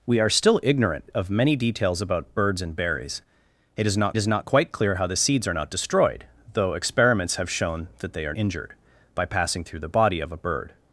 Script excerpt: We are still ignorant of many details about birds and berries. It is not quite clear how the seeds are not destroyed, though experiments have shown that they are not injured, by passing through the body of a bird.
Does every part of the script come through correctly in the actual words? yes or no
no